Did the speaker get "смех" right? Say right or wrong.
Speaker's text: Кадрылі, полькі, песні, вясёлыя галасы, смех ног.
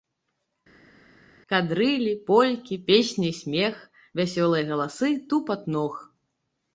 wrong